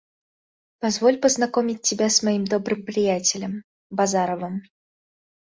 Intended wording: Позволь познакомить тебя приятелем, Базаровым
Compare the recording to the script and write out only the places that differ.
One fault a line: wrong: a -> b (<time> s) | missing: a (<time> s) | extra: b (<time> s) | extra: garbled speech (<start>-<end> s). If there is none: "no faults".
extra: с моим добрым (2.1 s)